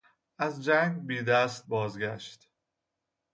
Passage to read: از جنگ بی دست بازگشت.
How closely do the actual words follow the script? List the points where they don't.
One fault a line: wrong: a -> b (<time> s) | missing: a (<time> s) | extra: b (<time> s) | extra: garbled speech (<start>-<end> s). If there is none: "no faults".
no faults